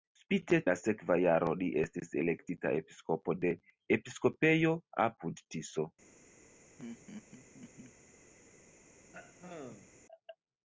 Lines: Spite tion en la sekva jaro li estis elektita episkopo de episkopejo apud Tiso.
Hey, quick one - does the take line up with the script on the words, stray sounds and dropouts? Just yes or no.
no